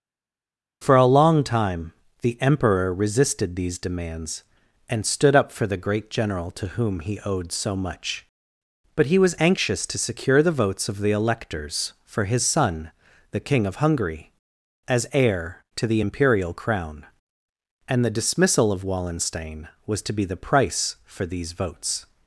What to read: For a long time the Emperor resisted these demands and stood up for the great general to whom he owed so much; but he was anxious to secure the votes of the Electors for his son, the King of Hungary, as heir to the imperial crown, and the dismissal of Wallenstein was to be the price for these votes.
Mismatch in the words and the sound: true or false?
false